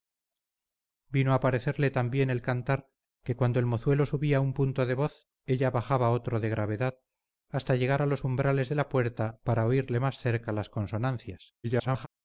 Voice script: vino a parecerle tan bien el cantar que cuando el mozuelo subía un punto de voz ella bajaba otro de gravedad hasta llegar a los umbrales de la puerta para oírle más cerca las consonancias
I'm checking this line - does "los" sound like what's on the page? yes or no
yes